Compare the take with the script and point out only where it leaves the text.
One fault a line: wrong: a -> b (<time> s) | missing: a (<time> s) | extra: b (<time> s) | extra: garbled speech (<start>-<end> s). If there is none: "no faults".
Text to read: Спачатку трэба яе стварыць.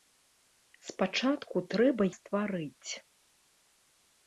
missing: яе (2.0 s)